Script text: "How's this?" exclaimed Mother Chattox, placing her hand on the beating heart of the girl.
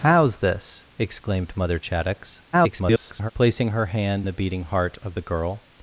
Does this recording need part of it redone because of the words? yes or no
yes